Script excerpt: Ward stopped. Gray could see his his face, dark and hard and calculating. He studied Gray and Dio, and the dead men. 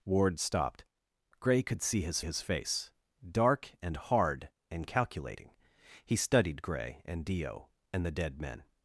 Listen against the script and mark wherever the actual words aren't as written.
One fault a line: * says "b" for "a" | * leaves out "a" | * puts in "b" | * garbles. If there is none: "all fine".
all fine